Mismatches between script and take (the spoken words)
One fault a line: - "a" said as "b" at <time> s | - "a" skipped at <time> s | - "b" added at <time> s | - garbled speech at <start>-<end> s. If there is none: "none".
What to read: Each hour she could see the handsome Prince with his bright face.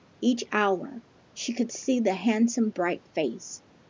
- "Prince with his" skipped at 2.7 s